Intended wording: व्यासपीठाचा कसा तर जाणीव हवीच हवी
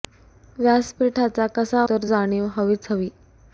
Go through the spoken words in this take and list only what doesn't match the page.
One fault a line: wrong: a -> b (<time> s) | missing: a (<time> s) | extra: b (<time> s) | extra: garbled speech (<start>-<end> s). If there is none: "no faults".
no faults